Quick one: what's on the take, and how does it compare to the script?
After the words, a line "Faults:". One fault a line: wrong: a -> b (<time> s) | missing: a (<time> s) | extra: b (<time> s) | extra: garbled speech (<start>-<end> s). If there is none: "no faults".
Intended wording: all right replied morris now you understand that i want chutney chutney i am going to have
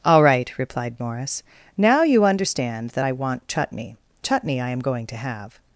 all right replied morris now you understand that i want chutney chutney i am going to have
Faults:
no faults